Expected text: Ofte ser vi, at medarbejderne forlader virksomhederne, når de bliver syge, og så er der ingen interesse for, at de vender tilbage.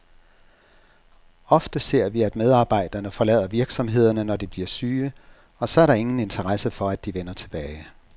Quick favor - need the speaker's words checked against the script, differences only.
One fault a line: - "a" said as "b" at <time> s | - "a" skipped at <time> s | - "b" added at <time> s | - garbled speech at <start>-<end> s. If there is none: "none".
none